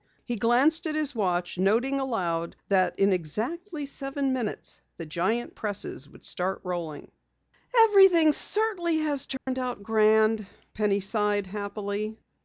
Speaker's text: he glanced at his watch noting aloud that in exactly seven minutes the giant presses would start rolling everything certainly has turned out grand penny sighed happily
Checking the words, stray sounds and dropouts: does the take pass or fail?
fail